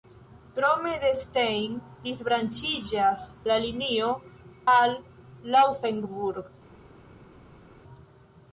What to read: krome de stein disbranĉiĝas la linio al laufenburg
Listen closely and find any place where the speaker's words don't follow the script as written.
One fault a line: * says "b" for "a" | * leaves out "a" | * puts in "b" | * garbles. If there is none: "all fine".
all fine